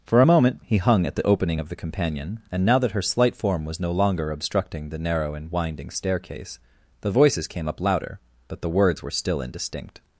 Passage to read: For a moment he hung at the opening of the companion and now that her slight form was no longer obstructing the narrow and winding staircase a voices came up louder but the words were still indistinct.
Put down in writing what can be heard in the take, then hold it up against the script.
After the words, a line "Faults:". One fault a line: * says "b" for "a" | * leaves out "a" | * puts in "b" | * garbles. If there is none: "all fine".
For a moment he hung at the opening of the companion and now that her slight form was no longer obstructing the narrow and winding staircase the voices came up louder but the words were still indistinct.
Faults:
* says "the" for "a"